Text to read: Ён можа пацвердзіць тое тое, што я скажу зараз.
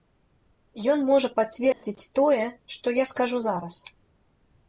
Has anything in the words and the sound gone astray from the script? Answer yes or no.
yes